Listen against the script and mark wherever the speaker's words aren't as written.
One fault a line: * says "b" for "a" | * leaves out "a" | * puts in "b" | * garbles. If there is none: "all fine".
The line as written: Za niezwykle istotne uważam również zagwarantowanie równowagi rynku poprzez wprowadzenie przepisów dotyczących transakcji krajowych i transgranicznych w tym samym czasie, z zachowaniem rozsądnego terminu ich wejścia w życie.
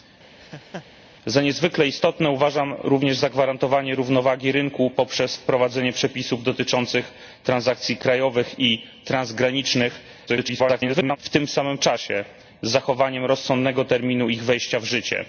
* garbles